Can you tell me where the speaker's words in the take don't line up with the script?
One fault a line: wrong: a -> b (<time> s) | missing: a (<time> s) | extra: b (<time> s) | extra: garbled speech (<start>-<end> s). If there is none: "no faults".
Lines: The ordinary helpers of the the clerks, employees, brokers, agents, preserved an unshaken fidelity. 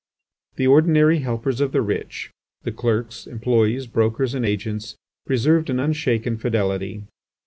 extra: rich (1.8 s)
extra: and (4.3 s)